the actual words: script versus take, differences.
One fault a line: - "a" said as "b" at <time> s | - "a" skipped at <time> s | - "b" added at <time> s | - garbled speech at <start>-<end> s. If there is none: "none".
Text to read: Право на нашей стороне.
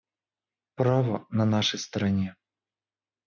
none